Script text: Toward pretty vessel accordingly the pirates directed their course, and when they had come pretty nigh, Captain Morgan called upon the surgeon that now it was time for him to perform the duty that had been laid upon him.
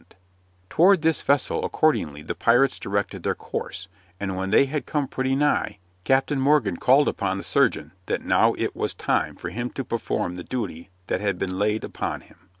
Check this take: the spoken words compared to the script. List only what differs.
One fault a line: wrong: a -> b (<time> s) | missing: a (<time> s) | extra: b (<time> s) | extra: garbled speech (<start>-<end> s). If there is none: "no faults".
wrong: pretty -> this (1.0 s)